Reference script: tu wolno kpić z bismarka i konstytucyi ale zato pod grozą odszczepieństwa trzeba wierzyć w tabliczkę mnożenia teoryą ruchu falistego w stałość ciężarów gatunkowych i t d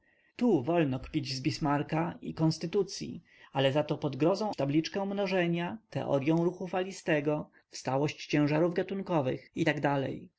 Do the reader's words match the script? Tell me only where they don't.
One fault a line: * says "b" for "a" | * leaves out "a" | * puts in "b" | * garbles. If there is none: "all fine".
* leaves out "odszczepieństwa trzeba wierzyć"